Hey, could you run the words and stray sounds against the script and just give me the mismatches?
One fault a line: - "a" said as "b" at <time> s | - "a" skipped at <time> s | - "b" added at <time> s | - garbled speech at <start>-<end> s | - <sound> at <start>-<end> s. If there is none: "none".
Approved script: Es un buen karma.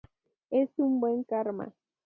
none